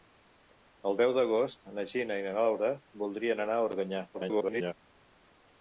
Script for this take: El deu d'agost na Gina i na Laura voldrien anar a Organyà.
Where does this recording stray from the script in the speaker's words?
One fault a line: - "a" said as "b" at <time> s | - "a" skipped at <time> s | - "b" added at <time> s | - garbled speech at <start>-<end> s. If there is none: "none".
- garbled speech at 4.1-4.7 s